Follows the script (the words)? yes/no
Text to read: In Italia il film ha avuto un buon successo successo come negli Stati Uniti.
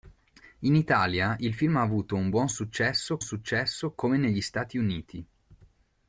yes